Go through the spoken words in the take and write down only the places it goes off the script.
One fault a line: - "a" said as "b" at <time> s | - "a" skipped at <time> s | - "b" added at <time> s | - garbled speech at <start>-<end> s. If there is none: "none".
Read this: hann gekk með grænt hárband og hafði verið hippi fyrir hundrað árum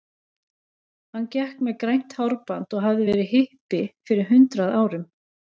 none